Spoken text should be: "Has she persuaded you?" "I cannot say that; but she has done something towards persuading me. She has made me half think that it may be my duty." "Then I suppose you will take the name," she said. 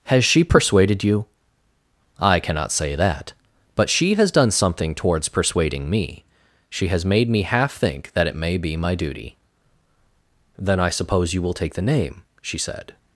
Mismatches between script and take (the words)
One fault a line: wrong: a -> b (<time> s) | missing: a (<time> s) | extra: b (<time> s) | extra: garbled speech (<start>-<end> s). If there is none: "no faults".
no faults